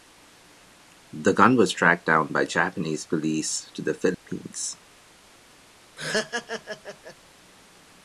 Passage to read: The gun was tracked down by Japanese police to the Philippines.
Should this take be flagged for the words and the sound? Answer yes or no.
yes